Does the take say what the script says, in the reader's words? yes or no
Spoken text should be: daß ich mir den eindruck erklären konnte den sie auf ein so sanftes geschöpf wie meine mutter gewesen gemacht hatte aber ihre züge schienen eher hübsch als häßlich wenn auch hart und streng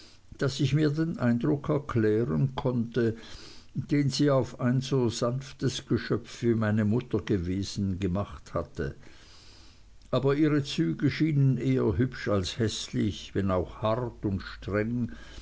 yes